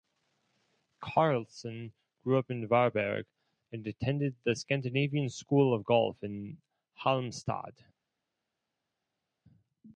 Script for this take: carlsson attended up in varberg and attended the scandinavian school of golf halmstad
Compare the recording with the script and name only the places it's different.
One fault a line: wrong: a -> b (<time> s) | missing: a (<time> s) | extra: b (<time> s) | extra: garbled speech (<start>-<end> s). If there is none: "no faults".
wrong: attended -> grew (2.2 s)
extra: in (6.2 s)